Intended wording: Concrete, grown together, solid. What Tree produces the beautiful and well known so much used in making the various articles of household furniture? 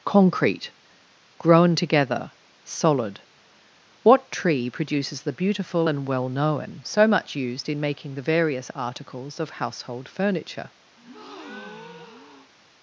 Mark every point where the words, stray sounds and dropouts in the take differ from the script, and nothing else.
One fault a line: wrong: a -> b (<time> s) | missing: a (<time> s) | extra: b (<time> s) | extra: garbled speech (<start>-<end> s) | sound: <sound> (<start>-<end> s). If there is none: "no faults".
sound: breath (11.0-12.5 s)